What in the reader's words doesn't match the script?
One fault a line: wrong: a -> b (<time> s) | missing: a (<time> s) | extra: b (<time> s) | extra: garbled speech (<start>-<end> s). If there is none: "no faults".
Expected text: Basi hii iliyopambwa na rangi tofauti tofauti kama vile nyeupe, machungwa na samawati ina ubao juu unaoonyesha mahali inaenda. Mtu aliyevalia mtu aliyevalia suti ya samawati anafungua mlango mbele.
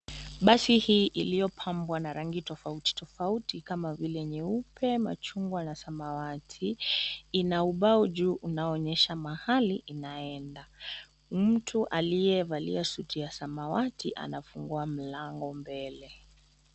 missing: mtu aliyevalia (12.8 s)